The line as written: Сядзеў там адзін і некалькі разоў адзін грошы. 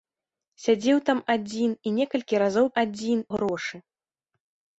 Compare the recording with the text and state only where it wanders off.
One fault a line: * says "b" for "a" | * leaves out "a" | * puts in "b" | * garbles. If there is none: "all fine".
all fine